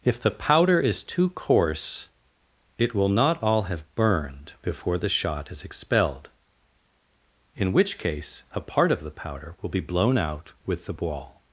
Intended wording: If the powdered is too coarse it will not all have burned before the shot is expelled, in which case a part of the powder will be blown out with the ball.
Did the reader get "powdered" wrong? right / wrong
wrong